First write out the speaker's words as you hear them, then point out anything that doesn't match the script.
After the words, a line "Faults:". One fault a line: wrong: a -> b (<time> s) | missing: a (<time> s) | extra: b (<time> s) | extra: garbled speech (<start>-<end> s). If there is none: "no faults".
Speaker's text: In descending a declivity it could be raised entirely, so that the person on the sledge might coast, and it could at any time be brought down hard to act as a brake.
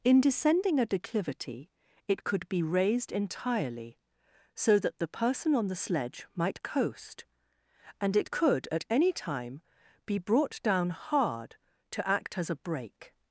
In descending a declivity it could be raised entirely, so that the person on the sledge might coast, and it could at any time be brought down hard to act as a brake.
Faults:
no faults